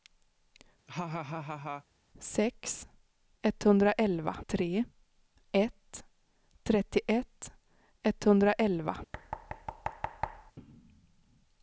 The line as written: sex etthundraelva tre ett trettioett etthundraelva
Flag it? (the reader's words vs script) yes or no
no